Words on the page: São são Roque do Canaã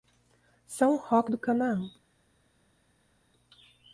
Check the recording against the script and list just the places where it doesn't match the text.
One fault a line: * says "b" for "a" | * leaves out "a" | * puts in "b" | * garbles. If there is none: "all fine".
* leaves out "são"